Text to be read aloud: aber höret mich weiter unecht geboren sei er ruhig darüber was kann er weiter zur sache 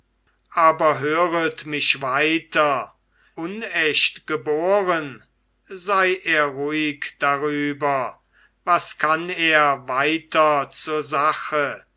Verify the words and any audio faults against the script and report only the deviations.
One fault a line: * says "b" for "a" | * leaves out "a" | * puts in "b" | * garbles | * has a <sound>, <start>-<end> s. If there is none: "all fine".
all fine